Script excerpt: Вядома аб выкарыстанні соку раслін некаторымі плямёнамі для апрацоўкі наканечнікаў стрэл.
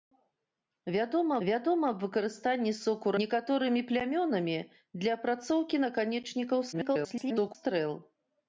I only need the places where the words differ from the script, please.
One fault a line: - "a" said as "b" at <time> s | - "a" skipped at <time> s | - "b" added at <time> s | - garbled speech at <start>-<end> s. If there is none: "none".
- "вядома" added at 1.5 s
- "раслін" skipped at 3.1 s
- garbled speech at 6.7-7.6 s